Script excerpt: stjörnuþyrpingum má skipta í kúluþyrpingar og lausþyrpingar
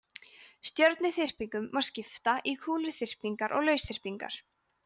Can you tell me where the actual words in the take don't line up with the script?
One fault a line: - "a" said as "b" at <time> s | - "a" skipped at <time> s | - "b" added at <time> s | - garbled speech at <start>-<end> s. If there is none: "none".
none